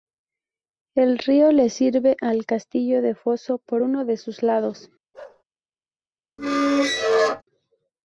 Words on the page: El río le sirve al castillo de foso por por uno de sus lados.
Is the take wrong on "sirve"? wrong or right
right